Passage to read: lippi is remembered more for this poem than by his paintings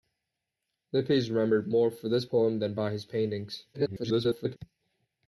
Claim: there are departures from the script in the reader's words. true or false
true